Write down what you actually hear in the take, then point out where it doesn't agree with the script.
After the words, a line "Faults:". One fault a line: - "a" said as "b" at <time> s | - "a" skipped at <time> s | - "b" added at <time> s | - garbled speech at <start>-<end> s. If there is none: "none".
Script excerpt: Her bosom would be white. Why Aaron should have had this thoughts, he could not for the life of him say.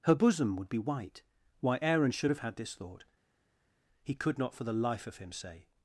Her bosom would be white. Why Aaron should have had this thought, he could not for the life of him say.
Faults:
- "thoughts" said as "thought" at 2.7 s